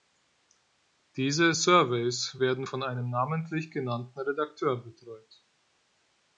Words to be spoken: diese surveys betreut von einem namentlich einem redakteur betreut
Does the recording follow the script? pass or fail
fail